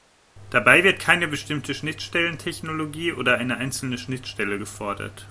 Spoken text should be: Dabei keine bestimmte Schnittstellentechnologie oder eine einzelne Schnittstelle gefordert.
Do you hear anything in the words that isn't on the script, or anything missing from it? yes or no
yes